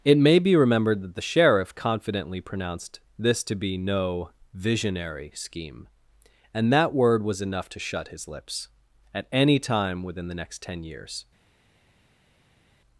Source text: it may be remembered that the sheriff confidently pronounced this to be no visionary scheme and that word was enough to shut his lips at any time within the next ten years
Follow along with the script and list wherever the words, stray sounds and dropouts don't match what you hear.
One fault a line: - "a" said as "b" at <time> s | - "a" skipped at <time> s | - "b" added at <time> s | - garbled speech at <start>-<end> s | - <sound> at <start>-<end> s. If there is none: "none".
none